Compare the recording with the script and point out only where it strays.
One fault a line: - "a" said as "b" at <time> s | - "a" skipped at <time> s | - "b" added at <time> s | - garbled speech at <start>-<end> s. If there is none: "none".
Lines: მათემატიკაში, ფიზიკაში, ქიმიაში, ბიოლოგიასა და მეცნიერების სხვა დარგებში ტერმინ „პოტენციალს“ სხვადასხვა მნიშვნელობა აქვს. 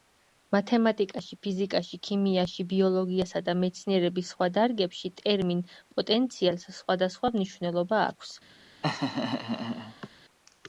none